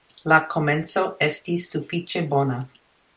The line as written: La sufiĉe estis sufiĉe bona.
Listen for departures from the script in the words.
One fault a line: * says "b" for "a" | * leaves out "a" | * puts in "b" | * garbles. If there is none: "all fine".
* says "komenco" for "sufiĉe"